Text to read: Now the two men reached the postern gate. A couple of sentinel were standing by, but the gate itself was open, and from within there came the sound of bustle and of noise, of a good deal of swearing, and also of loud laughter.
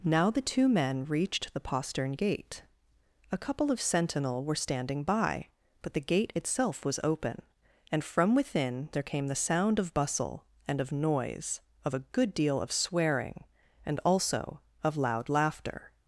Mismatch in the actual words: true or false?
false